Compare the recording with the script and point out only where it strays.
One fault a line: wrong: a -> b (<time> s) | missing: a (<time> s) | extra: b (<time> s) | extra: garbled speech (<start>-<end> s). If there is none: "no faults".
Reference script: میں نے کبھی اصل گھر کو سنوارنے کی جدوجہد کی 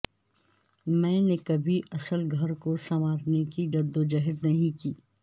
extra: نہیں (4.4 s)